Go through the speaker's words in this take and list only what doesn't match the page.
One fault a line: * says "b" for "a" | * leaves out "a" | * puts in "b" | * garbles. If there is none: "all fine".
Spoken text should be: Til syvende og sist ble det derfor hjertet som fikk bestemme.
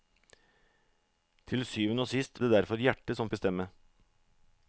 * leaves out "ble"
* leaves out "fikk"